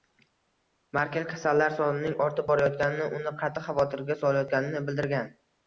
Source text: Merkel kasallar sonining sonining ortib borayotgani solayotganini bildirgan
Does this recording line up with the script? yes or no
no